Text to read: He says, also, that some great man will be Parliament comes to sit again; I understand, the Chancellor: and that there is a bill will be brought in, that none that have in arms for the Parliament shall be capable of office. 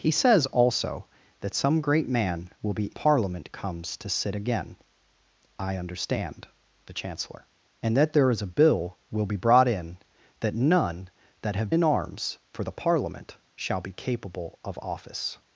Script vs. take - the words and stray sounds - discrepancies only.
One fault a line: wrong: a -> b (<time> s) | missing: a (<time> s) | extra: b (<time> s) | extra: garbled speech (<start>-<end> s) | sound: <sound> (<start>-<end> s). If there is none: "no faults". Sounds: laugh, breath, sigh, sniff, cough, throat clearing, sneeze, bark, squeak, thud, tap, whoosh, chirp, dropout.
no faults